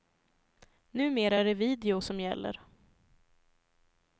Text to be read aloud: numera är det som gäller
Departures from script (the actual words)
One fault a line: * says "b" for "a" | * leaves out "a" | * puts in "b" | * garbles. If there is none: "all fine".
* puts in "video"